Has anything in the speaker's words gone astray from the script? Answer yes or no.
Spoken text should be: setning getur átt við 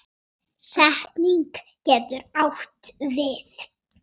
no